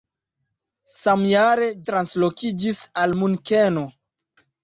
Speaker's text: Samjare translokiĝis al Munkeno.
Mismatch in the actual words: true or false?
false